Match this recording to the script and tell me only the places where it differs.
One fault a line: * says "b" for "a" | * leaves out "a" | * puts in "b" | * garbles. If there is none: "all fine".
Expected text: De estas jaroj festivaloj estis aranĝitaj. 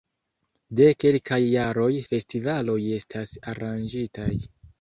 * says "kelkaj" for "estas"
* says "estas" for "estis"